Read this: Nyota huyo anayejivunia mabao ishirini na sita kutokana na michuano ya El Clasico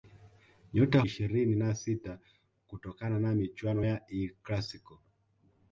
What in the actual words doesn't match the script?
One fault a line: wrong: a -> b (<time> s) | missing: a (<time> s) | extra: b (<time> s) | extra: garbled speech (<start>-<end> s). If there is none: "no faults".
missing: huyo anayejivunia mabao (1.0 s)